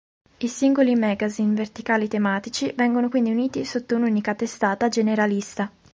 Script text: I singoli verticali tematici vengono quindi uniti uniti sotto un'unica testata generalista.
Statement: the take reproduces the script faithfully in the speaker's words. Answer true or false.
false